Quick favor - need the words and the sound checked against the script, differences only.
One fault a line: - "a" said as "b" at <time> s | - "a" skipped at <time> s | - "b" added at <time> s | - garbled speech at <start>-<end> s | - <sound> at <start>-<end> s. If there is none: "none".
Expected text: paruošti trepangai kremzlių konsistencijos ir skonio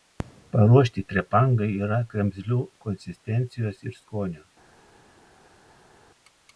- "yra" added at 1.9 s